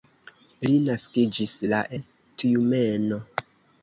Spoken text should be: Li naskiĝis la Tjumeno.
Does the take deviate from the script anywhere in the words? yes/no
no